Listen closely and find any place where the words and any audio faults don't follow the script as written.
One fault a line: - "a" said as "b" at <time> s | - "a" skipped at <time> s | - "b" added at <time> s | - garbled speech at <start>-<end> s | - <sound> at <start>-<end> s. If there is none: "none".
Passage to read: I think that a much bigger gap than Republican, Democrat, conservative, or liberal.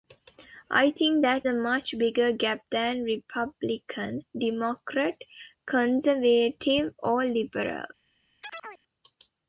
- chirp at 8.4-8.8 s